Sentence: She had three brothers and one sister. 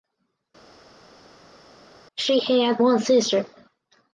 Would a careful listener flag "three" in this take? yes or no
yes